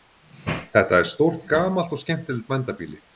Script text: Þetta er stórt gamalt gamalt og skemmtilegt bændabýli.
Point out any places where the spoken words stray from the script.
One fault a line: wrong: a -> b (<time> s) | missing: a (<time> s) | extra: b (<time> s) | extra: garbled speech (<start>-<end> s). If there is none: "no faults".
missing: gamalt (1.9 s)